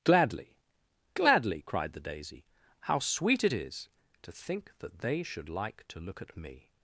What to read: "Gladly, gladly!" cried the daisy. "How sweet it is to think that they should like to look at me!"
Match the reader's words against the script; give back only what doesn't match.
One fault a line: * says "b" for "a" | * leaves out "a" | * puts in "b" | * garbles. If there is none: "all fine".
all fine